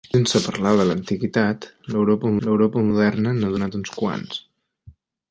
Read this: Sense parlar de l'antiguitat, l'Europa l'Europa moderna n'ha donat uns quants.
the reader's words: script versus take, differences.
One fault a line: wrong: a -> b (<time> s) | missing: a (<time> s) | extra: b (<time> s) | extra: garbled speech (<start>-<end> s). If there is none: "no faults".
no faults